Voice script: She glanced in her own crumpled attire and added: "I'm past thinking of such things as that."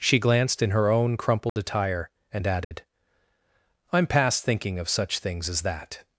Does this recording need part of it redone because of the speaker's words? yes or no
no